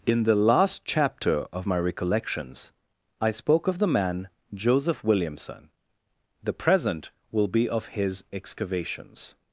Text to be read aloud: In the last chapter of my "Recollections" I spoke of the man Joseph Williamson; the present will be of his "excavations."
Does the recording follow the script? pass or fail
pass